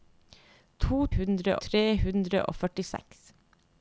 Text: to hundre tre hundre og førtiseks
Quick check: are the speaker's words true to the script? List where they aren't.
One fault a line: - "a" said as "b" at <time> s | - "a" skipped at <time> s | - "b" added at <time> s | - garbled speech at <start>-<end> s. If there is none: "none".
none